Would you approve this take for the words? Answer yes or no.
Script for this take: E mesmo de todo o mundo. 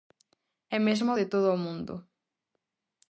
yes